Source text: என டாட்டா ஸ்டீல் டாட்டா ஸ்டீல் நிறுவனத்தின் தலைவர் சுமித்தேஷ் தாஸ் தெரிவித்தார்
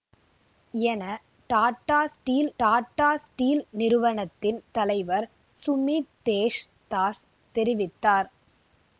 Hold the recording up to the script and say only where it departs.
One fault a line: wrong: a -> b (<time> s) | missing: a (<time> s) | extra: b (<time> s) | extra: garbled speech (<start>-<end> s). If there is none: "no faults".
no faults